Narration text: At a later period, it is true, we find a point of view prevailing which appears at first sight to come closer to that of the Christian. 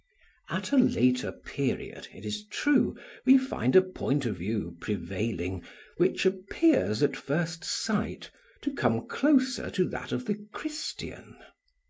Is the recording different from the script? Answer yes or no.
no